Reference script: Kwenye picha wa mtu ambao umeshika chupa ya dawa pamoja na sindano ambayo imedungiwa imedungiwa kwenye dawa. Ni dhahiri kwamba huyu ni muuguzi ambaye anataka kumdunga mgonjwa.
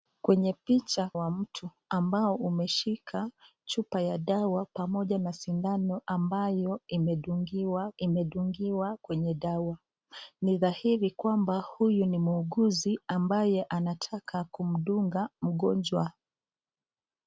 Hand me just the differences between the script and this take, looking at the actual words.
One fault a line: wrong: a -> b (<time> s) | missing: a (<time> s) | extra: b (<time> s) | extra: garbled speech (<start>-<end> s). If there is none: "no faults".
no faults